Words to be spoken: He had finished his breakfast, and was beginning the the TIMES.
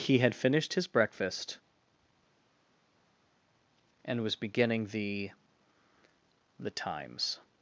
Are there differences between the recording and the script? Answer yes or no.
no